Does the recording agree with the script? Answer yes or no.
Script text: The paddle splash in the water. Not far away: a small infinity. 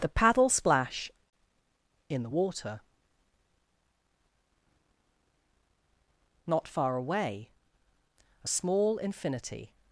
yes